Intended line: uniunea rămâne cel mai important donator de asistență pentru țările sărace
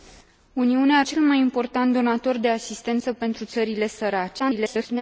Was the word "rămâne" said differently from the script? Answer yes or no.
yes